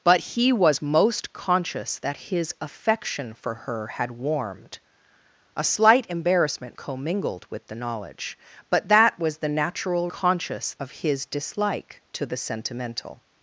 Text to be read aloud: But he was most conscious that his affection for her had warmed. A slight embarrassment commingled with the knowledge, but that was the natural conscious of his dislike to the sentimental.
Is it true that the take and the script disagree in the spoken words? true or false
false